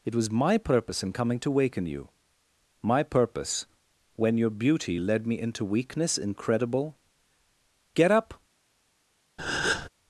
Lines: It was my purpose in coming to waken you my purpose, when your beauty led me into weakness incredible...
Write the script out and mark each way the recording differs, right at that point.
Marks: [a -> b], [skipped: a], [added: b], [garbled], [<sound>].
It was my purpose in coming to waken you my purpose, when your beauty led me into weakness incredible... [added: Get up] [breath]